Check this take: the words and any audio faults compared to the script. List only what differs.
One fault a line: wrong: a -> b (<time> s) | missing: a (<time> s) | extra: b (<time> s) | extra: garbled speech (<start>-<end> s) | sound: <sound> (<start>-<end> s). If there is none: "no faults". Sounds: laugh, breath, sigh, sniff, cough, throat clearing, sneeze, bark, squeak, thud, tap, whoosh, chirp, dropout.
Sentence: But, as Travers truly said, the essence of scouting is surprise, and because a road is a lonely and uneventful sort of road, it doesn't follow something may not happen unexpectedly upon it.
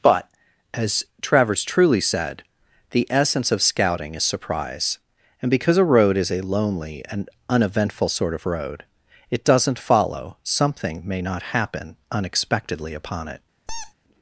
sound: squeak (13.7-13.9 s)